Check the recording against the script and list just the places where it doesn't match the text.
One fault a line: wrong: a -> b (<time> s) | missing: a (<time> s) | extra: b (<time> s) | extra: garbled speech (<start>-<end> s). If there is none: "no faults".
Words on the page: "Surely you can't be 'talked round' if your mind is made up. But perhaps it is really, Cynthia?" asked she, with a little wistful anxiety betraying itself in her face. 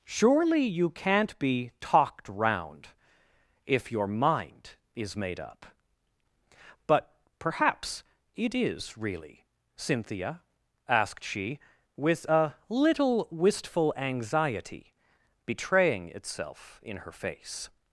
no faults